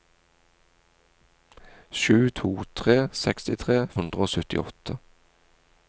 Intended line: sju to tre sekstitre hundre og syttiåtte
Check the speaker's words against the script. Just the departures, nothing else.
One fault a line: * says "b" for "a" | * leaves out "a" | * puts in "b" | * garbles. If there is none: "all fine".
all fine